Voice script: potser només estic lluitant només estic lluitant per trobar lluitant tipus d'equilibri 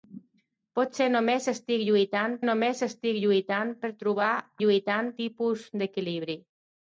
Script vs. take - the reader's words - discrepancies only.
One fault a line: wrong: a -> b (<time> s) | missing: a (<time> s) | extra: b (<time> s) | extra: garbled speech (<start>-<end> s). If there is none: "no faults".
no faults